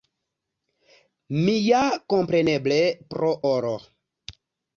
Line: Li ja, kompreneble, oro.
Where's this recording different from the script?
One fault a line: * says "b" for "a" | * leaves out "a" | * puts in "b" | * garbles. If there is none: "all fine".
* says "Mi" for "Li"
* puts in "pro"